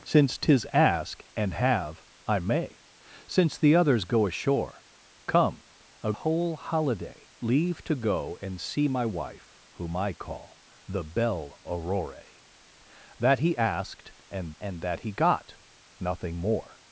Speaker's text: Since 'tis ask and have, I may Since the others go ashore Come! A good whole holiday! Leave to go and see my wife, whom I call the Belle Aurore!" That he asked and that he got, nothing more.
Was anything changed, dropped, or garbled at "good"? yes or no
yes